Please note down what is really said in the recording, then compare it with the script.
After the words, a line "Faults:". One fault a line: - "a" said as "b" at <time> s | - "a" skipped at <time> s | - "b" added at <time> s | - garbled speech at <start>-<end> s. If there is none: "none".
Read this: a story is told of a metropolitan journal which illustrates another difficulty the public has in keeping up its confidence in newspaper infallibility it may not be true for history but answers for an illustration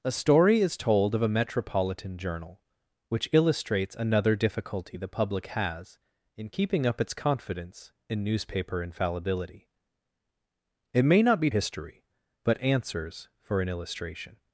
a story is told of a metropolitan journal which illustrates another difficulty the public has in keeping up its confidence in newspaper infallibility it may not be history but answers for an illustration
Faults:
- "true for" skipped at 11.5 s